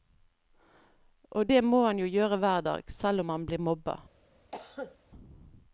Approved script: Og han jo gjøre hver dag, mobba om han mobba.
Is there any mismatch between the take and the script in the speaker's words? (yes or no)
yes